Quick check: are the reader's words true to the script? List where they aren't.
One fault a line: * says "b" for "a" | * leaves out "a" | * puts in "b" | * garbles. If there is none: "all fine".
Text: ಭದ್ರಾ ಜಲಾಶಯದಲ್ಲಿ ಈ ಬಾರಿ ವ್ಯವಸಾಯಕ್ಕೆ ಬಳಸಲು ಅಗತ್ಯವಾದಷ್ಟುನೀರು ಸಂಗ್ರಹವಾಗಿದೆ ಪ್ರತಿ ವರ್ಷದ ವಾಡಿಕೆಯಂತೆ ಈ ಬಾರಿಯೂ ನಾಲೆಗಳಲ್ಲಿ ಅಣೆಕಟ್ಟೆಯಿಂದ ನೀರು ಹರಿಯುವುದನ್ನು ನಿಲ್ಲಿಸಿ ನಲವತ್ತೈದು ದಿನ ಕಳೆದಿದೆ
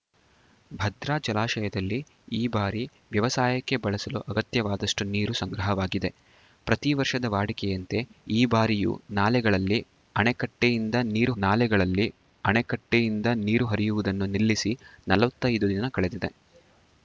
* puts in "ನಾಲೆಗಳಲ್ಲಿ ಅಣೆಕಟ್ಟೆಯಿಂದ ನೀರು"